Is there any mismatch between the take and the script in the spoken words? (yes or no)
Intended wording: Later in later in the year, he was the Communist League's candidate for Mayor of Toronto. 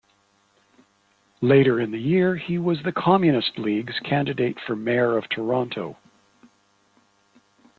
yes